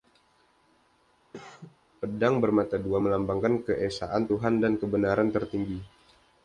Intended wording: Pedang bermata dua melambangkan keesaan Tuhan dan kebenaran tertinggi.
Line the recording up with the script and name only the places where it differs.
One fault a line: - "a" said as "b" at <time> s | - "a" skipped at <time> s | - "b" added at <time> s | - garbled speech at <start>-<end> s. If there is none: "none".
none